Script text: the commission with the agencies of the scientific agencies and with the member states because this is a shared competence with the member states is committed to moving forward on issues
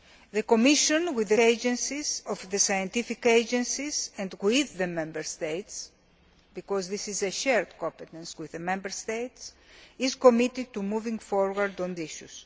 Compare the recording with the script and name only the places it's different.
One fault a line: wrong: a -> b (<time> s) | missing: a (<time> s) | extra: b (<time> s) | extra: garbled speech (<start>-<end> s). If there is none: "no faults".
no faults